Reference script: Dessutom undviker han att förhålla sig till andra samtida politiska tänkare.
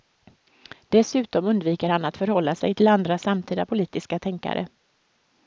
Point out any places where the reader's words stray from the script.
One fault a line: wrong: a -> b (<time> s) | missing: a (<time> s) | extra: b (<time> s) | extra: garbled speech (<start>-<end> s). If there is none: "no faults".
no faults